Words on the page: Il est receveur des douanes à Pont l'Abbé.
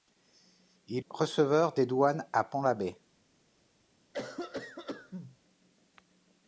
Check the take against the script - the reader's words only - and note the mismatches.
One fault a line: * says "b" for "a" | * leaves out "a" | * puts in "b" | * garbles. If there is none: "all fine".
* leaves out "est"